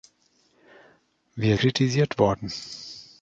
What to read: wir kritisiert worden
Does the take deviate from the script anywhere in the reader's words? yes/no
no